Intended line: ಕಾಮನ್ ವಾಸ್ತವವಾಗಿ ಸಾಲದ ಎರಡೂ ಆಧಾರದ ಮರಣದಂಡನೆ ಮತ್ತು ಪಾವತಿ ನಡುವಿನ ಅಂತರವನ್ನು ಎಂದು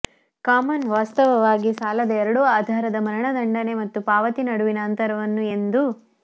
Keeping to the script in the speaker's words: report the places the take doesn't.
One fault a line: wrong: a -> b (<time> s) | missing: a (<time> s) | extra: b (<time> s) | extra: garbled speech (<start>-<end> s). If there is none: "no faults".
no faults